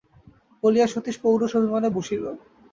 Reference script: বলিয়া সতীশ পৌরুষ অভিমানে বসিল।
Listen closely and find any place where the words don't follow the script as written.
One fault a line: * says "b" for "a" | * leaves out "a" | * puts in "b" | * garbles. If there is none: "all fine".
all fine